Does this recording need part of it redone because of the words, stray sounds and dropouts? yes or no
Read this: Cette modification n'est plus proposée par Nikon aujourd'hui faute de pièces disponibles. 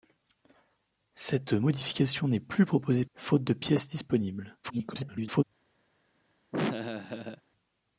yes